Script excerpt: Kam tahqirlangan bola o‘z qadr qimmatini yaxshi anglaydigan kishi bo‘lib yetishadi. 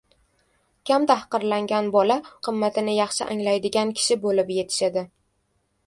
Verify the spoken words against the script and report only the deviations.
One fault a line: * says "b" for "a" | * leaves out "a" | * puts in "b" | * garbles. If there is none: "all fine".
* leaves out "o‘z qadr"